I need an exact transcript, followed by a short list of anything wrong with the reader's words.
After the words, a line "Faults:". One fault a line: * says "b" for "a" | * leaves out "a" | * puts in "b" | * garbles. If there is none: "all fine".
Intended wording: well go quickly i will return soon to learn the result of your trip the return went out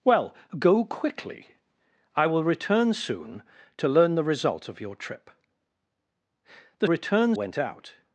well go quickly i will return soon to learn the result of your trip the return went out
Faults:
all fine